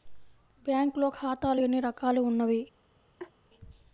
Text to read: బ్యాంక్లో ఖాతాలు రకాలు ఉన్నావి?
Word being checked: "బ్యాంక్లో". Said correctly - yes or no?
yes